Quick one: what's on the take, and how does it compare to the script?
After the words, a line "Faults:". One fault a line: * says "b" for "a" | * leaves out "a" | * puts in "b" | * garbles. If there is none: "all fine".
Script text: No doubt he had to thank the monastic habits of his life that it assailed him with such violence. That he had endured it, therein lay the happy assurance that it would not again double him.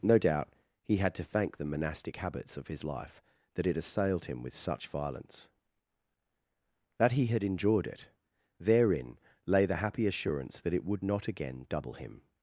No doubt he had to thank the monastic habits of his life that it assailed him with such violence. That he had endured it, therein lay the happy assurance that it would not again double him.
Faults:
all fine